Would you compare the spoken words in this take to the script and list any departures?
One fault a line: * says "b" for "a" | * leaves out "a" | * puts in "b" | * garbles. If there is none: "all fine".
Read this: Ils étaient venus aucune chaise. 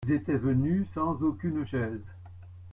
* puts in "sans"